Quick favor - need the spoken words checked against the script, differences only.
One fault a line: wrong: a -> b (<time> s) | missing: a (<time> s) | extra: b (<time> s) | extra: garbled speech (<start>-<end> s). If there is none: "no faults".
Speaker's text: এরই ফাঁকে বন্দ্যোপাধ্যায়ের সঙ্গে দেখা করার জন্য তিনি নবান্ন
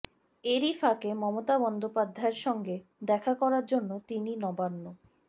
extra: মমতা (1.1 s)